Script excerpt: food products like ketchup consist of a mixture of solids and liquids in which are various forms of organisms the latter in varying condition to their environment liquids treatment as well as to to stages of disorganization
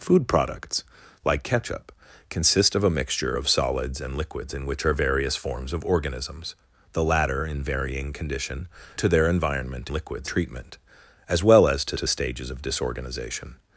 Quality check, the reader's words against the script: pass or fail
pass